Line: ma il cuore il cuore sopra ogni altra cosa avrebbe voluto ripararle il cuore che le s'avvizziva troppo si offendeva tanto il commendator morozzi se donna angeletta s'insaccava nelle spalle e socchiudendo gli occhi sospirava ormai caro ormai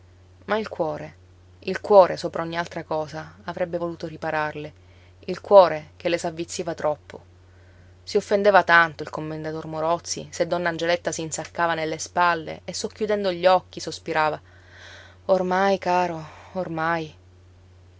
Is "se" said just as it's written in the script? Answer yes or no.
yes